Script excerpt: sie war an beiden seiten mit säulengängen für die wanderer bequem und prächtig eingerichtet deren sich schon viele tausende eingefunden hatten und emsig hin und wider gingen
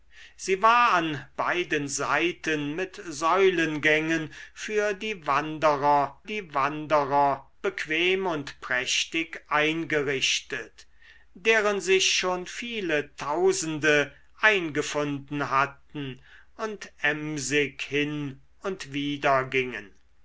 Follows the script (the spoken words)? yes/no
no